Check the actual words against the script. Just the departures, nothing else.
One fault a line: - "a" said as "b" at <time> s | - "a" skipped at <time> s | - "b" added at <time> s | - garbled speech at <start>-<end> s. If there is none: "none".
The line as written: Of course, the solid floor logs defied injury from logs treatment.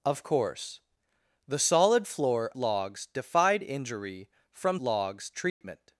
none